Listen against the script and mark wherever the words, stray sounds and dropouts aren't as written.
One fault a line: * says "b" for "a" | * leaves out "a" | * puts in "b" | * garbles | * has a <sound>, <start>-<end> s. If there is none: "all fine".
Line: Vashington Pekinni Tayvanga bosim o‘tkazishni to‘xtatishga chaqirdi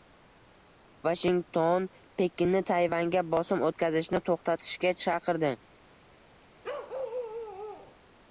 * has a bark, 6.6-8.0 s